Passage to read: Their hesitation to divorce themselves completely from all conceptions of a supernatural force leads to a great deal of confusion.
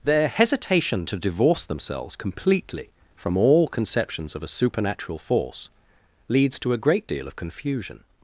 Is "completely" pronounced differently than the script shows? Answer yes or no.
no